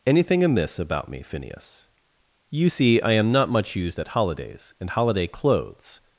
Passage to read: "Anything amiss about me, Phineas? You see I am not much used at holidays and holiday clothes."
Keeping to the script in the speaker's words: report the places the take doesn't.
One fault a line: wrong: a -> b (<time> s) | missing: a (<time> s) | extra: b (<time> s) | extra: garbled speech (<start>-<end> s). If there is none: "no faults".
no faults